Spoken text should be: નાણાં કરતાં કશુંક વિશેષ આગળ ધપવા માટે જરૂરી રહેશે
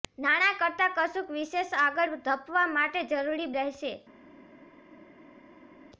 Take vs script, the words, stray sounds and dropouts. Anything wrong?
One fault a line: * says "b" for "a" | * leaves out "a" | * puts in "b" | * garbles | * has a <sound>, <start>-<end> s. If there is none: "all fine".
all fine